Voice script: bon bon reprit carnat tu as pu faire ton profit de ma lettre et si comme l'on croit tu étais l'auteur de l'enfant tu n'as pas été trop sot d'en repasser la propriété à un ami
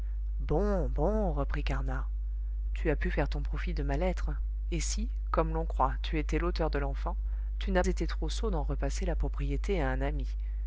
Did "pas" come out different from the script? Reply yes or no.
yes